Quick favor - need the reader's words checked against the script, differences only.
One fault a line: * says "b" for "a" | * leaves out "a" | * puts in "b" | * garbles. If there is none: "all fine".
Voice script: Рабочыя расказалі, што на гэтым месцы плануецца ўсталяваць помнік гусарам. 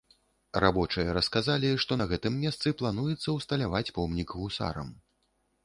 all fine